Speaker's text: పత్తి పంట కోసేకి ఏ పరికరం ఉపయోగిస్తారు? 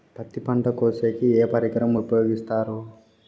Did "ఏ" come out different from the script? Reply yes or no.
no